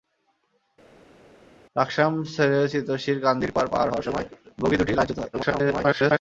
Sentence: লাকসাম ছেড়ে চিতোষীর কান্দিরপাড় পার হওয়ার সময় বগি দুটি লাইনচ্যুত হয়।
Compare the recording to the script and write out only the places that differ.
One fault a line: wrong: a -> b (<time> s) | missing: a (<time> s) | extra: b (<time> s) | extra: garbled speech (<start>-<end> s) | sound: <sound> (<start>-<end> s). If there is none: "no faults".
extra: garbled speech (5.3-6.2 s)